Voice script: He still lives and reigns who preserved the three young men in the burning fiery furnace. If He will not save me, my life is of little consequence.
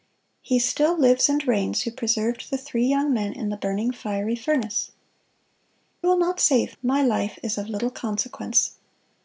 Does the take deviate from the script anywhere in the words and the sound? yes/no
yes